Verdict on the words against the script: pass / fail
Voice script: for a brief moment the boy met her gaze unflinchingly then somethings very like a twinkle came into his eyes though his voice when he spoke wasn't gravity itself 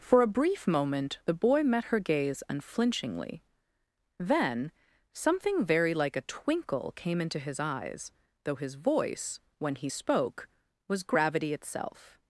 fail